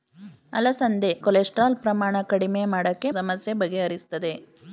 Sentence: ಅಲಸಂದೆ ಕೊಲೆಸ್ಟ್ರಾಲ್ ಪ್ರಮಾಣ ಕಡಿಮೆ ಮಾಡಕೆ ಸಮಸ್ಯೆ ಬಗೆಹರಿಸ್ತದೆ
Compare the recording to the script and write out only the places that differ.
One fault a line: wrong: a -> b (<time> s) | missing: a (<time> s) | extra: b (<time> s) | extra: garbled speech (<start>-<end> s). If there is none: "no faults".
no faults